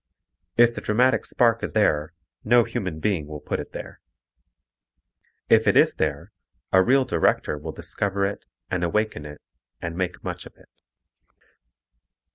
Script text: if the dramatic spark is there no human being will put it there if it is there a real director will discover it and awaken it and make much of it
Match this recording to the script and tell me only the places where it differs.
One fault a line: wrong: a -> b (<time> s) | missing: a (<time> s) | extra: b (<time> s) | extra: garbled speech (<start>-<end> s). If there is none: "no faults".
no faults